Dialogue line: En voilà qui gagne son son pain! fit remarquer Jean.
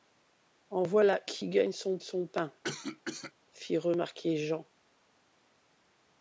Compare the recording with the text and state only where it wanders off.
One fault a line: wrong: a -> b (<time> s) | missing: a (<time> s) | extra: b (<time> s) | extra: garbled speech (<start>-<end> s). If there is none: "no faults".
no faults